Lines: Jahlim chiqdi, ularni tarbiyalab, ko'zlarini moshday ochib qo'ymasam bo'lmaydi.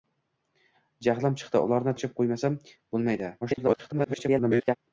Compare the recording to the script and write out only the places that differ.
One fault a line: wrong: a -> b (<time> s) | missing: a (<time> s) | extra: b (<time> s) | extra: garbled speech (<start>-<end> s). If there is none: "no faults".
missing: tarbiyalab ko'zlarini moshday (1.9 s)
extra: garbled speech (3.4-4.8 s)